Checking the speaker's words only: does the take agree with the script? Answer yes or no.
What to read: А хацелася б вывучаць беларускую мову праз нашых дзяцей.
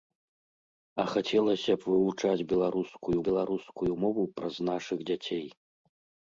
no